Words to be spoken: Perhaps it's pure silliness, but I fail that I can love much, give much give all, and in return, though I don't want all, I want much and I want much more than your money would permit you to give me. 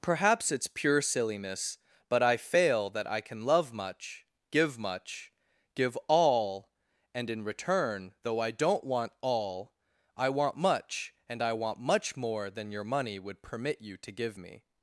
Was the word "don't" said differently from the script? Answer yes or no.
no